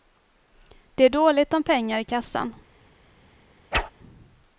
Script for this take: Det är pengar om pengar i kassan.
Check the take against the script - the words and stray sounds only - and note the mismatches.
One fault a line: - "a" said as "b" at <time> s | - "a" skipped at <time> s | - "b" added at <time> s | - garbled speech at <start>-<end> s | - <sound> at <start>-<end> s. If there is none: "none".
- "pengar" said as "dåligt" at 1.1 s
- whoosh at 3.7-3.9 s